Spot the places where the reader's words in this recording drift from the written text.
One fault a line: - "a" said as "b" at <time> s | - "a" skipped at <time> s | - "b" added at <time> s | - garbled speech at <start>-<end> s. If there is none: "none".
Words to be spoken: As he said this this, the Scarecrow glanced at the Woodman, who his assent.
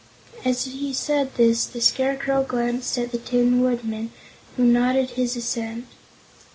- "this" skipped at 1.7 s
- "Tin" added at 3.2 s
- "nodded" added at 4.7 s